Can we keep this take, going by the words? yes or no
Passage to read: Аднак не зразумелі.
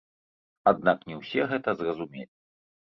no